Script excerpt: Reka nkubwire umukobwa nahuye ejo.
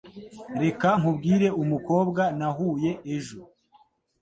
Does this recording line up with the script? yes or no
yes